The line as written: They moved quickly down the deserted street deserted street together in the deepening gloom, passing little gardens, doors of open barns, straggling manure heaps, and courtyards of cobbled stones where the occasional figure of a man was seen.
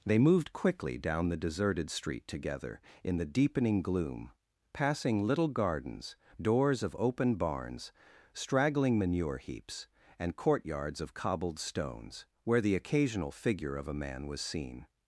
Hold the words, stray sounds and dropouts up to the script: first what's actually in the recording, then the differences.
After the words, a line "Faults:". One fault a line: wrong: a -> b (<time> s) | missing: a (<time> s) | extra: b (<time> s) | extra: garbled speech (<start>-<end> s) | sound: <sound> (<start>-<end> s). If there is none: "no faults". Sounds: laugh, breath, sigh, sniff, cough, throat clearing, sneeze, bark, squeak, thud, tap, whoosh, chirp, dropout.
They moved quickly down the deserted street together in the deepening gloom, passing little gardens, doors of open barns, straggling manure heaps, and courtyards of cobbled stones where the occasional figure of a man was seen.
Faults:
missing: deserted street (2.3 s)